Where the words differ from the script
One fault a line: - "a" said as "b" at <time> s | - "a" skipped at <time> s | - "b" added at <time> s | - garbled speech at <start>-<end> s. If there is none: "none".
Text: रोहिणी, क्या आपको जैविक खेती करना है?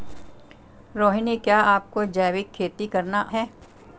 none